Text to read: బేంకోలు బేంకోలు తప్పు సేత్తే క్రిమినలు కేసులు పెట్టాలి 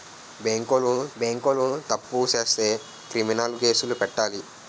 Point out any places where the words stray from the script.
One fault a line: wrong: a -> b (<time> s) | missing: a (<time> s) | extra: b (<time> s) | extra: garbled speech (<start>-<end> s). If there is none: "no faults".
no faults